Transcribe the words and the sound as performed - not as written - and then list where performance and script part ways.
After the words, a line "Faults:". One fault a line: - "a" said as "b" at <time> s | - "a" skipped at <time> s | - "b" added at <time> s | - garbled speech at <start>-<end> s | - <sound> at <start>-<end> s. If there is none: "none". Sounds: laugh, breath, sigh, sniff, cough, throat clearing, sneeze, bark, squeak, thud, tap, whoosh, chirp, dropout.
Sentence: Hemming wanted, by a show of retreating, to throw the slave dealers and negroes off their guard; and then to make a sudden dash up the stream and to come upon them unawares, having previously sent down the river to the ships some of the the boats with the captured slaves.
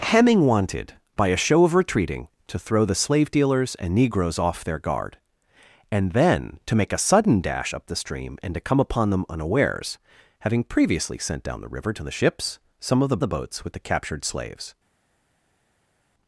Hemming wanted, by a show of retreating, to throw the slave dealers and negroes off their guard; and then to make a sudden dash up the stream and to come upon them unawares, having previously sent down the river to the ships some of the the boats with the captured slaves.
Faults:
none